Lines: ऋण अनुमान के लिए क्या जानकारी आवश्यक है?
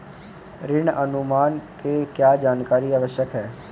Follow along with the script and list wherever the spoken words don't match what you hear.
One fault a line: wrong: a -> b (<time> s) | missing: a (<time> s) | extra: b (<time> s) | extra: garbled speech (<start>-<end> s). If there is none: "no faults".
missing: लिए (2.0 s)